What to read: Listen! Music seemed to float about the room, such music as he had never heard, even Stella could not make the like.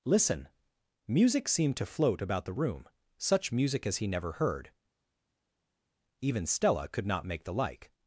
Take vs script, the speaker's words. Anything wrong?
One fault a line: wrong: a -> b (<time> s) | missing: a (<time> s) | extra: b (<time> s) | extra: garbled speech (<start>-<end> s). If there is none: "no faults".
missing: had (4.1 s)